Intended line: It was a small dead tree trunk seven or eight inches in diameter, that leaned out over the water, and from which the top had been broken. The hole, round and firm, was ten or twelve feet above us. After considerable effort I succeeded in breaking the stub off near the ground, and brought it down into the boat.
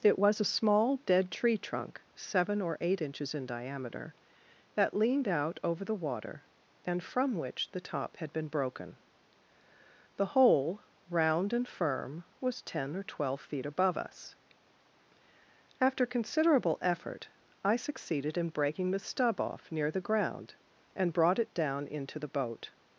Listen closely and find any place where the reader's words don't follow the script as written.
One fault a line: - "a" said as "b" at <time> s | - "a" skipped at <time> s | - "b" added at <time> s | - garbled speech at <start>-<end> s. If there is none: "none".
none